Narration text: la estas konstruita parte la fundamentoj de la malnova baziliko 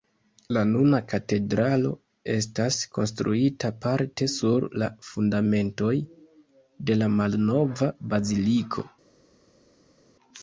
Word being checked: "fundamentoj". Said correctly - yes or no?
yes